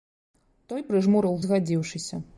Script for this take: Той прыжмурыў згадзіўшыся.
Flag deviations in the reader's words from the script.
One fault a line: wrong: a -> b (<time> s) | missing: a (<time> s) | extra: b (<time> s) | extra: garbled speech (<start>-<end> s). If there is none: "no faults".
no faults